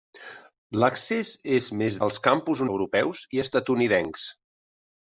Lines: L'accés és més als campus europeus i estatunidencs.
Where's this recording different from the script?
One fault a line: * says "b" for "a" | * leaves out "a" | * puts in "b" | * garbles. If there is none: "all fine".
all fine